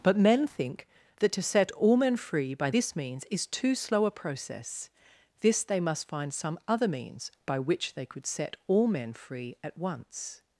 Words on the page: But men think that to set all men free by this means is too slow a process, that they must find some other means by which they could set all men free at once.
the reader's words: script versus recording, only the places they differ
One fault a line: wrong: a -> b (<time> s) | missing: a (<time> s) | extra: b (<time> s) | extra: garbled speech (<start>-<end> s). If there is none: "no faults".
wrong: that -> this (5.4 s)